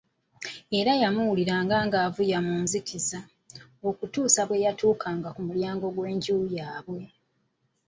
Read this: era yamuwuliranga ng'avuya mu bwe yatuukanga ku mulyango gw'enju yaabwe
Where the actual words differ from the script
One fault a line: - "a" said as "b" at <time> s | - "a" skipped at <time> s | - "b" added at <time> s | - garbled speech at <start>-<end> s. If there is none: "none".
- "nzikiza okutuusa" added at 2.6 s